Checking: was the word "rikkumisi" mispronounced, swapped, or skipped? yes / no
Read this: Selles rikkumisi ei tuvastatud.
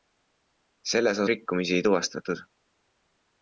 no